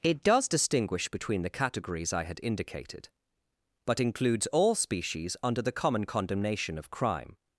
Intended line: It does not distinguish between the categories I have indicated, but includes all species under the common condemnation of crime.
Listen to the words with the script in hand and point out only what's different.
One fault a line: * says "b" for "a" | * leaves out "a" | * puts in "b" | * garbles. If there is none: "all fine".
* leaves out "not"
* says "had" for "have"